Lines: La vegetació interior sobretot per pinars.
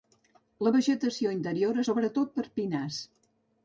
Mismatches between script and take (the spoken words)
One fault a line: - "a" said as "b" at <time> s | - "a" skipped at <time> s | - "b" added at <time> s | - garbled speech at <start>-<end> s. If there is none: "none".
none